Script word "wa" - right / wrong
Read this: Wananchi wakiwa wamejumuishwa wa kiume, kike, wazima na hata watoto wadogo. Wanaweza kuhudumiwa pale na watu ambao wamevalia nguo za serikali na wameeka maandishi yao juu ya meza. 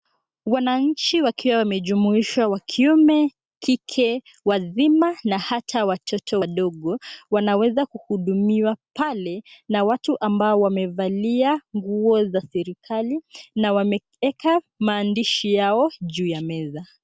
right